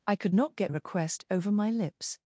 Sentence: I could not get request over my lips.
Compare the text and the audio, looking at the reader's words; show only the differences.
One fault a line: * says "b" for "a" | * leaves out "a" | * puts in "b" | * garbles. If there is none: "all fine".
all fine